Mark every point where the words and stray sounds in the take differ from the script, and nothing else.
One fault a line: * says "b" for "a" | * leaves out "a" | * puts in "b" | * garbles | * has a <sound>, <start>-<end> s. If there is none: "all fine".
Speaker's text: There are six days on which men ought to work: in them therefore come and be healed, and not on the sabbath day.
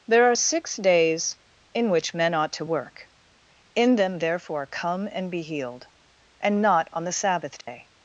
* says "in" for "on"
* has a dropout, 7.6-7.7 s